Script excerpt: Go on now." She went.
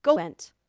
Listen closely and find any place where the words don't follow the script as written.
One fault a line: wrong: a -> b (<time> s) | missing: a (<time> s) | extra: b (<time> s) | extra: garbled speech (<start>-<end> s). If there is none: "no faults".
missing: on now She (0.2 s)